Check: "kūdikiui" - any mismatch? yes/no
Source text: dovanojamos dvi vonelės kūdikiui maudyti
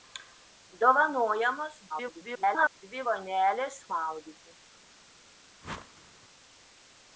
yes